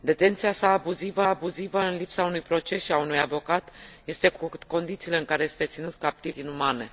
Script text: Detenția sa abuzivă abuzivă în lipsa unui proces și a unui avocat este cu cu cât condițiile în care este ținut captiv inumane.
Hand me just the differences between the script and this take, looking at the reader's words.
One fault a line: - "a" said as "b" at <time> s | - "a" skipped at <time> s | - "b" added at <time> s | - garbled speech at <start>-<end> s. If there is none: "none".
none